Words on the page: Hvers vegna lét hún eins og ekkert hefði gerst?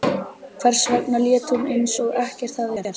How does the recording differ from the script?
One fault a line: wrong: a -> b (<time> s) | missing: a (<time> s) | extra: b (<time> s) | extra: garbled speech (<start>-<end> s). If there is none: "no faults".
no faults